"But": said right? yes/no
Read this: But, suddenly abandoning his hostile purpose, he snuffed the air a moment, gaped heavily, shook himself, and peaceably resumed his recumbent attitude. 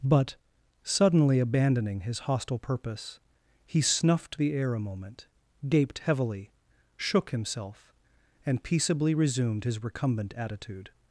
yes